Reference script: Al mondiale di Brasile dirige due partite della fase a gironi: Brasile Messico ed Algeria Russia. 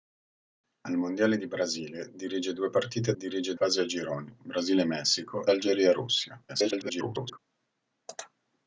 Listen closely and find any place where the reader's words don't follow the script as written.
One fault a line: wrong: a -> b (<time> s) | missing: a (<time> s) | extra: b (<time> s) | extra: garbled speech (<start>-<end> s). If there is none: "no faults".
wrong: della -> dirige (3.2 s)
missing: ed (5.5 s)
extra: garbled speech (6.5-7.4 s)